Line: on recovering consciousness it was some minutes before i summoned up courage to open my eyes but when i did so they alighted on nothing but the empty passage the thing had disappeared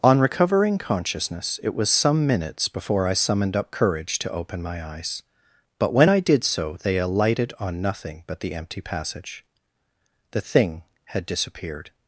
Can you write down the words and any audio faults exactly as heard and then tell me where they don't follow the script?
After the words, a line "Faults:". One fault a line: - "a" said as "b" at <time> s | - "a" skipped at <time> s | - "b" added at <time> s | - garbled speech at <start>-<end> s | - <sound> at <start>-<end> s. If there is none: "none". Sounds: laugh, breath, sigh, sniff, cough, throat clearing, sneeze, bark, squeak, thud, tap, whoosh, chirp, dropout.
on recovering consciousness it was some minutes before i summoned up courage to open my eyes but when i did so they alighted on nothing but the empty passage the thing had disappeared
Faults:
none